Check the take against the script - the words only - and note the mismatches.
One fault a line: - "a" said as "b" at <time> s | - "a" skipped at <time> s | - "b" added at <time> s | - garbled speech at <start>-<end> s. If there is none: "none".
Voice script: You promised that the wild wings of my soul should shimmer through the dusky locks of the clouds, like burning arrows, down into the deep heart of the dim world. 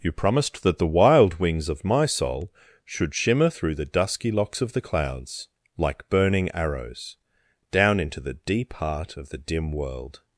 none